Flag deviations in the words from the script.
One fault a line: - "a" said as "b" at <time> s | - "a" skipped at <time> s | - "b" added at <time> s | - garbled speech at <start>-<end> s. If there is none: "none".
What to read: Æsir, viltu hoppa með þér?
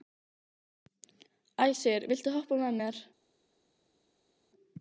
- "þér" said as "mér" at 2.8 s